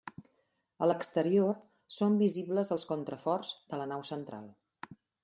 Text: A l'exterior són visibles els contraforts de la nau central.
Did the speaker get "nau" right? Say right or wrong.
right